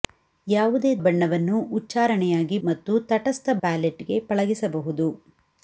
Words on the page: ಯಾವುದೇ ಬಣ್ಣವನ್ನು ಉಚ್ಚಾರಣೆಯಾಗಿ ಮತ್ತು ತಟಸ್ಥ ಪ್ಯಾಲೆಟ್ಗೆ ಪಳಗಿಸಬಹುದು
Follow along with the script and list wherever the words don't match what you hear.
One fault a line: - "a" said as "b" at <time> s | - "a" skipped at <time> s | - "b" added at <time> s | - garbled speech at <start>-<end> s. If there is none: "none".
none